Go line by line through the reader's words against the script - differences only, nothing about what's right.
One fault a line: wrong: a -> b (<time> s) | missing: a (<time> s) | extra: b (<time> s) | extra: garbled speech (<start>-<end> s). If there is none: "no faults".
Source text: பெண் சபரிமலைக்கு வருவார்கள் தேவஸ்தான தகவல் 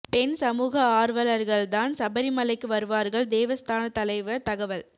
extra: சமூக ஆர்வலர்கள் தான் (0.3 s)
extra: தலைவர் (3.9 s)